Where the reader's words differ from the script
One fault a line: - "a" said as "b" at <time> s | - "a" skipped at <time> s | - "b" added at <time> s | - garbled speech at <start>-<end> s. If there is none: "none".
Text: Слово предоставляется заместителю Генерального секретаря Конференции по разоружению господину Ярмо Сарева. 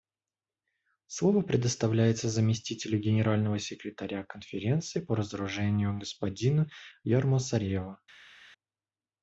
none